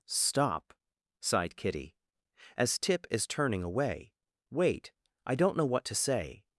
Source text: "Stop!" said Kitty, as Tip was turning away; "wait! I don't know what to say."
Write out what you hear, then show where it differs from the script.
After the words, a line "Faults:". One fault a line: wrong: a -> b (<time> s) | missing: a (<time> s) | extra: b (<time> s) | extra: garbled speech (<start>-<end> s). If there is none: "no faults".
"Stop!" sighed Kitty, as Tip is turning away; "wait! I don't know what to say."
Faults:
wrong: said -> sighed (1.2 s)
wrong: was -> is (3.1 s)